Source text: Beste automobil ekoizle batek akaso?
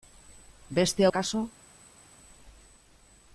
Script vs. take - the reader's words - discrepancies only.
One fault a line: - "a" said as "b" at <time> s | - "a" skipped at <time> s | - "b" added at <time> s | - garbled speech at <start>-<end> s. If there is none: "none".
- "automobil ekoizle batek" skipped at 1.1 s